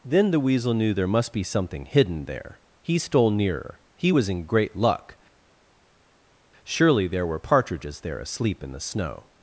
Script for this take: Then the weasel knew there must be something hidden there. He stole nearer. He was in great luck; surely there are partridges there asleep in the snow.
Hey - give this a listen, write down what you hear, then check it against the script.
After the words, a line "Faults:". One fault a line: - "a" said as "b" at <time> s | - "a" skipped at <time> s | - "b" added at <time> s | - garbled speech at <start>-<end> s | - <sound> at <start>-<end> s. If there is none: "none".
Then the weasel knew there must be something hidden there. He stole nearer. He was in great luck; surely there were partridges there asleep in the snow.
Faults:
- "are" said as "were" at 7.3 s